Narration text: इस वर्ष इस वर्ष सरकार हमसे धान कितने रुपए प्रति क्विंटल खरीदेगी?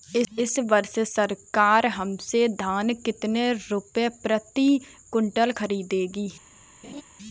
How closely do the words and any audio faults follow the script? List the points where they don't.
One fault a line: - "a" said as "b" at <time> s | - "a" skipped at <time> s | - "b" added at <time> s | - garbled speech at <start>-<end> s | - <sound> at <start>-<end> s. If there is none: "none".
- "इस वर्ष" skipped at 1.0 s
- laugh at 6.8-7.0 s